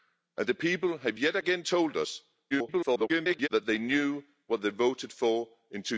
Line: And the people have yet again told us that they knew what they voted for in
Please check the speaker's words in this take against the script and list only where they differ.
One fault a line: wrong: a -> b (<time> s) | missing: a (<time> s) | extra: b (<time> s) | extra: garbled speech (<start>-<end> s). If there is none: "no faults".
extra: garbled speech (2.5-3.5 s)